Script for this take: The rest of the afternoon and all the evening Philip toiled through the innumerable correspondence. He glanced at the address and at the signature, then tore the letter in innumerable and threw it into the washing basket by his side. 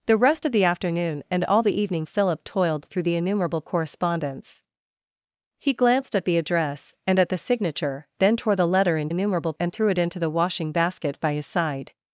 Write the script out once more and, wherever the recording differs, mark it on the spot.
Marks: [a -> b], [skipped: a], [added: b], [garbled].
The rest of the afternoon and all the evening Philip toiled through the innumerable correspondence. He glanced at the address and at the signature, then tore the letter in innumerable and threw it into the washing basket by his side.